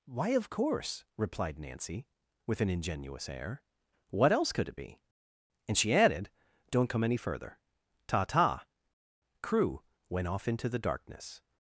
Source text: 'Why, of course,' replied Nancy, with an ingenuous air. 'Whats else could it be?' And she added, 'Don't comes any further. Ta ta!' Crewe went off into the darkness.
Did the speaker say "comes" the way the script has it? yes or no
no